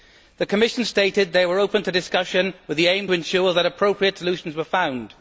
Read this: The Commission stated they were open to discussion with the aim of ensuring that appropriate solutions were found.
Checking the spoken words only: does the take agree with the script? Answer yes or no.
no